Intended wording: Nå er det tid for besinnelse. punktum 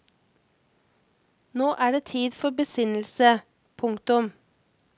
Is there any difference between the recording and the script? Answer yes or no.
no